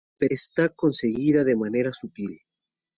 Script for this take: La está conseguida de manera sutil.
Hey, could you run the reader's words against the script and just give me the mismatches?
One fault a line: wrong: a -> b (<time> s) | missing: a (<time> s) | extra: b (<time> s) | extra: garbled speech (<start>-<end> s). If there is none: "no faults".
no faults